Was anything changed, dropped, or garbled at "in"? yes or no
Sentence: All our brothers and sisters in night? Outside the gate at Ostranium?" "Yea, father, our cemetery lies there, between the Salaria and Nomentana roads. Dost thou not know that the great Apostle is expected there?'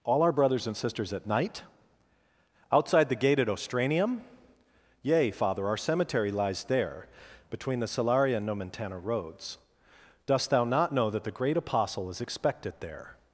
yes